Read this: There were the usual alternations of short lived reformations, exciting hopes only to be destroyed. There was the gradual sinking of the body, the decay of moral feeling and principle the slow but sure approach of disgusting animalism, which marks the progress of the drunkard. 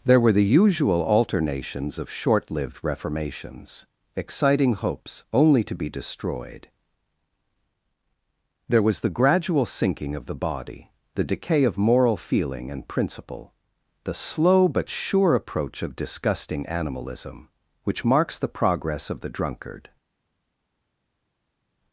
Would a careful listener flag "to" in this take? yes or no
no